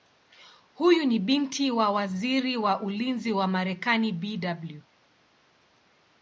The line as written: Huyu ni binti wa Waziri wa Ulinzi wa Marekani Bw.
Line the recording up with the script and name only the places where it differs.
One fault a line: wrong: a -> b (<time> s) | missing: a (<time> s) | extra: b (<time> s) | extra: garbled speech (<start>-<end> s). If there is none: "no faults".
no faults